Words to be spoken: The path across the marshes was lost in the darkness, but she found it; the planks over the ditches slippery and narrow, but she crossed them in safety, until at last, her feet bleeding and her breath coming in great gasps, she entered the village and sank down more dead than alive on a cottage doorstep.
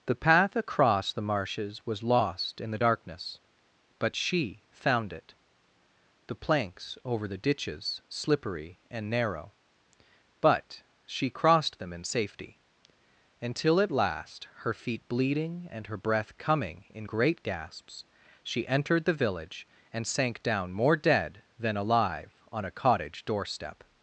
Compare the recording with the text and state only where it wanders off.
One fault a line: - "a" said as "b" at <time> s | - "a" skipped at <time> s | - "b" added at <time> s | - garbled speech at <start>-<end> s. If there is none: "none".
none